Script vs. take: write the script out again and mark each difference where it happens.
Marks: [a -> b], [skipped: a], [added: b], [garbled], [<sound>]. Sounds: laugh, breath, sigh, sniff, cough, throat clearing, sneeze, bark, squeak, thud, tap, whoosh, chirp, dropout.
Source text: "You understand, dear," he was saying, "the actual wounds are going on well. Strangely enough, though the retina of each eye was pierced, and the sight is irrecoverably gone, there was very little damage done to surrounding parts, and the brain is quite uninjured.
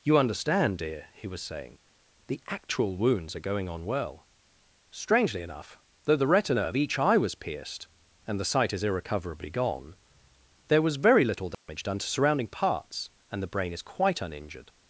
"You understand, dear," he was saying, "the actual wounds are going on well. Strangely enough, though the retina of each eye was pierced, and the sight is irrecoverably gone, there was very little damage [dropout] done to surrounding parts, and the brain is quite uninjured.